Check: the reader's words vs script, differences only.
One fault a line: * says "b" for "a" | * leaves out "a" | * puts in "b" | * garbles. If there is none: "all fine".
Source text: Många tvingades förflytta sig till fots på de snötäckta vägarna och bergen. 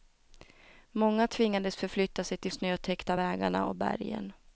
* leaves out "fots på de"